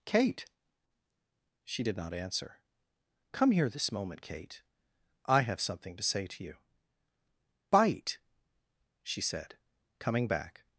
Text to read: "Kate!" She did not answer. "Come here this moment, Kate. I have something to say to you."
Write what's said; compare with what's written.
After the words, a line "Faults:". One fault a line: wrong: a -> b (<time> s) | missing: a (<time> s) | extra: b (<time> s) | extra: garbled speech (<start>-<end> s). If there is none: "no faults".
"Kate!" She did not answer. "Come here this moment, Kate. I have something to say to you." "Bite!" she said, coming back
Faults:
extra: Bite she said coming back (7.7 s)